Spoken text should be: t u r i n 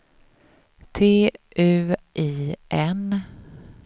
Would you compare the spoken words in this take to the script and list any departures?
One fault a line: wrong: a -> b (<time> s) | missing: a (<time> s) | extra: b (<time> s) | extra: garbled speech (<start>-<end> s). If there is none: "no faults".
missing: r (1.9 s)